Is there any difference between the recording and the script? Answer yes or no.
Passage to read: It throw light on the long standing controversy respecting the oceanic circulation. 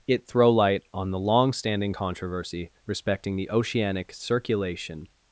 no